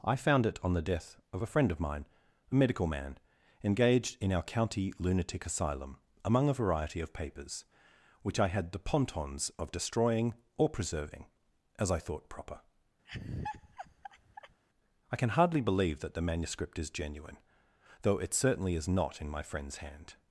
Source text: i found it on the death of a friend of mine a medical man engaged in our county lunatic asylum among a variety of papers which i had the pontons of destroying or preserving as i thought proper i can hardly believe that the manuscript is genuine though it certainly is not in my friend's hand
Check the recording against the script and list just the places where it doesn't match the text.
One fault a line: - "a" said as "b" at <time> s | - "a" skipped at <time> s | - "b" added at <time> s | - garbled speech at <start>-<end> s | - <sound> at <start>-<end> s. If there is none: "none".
- laugh at 13.0-14.6 s